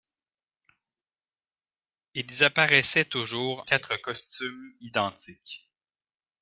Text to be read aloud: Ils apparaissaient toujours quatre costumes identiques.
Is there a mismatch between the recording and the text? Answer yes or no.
no